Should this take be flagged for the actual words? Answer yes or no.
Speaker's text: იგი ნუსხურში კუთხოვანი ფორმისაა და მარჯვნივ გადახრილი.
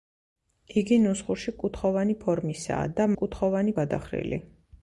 yes